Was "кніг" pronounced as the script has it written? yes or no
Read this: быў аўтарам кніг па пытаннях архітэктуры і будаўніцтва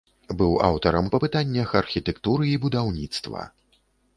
no